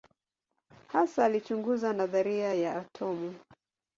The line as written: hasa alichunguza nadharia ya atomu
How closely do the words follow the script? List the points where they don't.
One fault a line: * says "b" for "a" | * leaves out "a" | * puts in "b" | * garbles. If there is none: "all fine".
all fine